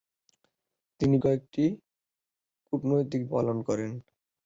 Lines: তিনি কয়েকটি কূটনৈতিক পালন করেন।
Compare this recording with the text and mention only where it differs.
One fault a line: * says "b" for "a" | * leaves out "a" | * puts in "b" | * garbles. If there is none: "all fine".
all fine